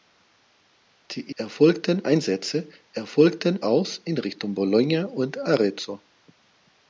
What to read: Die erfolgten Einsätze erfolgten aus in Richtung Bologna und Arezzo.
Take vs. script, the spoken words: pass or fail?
pass